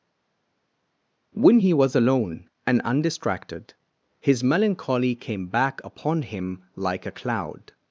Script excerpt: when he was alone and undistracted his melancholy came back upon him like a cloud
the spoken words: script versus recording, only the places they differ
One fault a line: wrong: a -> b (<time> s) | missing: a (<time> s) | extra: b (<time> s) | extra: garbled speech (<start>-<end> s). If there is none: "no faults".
no faults